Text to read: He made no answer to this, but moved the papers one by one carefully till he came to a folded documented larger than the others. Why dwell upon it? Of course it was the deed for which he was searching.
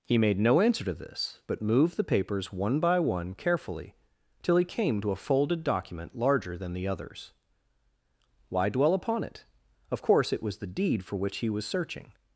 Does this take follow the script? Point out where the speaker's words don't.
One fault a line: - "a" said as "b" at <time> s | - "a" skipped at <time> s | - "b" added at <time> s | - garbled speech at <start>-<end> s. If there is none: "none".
- "documented" said as "document" at 5.6 s